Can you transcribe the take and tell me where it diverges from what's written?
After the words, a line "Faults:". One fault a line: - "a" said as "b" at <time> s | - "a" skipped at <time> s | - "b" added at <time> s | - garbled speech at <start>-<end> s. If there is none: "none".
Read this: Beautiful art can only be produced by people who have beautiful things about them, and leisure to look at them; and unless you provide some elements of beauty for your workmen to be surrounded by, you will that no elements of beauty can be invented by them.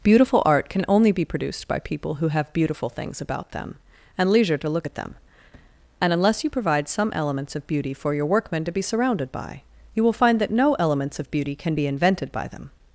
Beautiful art can only be produced by people who have beautiful things about them, and leisure to look at them; and unless you provide some elements of beauty for your workmen to be surrounded by, you will find that no elements of beauty can be invented by them.
Faults:
- "find" added at 10.1 s